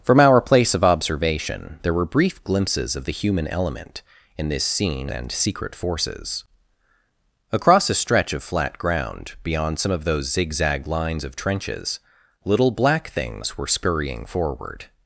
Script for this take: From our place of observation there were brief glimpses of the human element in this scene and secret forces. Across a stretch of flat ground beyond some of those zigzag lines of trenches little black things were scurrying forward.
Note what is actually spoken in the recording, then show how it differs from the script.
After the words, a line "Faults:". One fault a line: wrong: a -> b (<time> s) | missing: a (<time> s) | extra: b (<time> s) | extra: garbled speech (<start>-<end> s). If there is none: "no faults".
From our place of observation there were brief glimpses of the human element in this scene and secret forces. Across a stretch of flat ground beyond some of those zigzag lines of trenches little black things were scurrying forward.
Faults:
no faults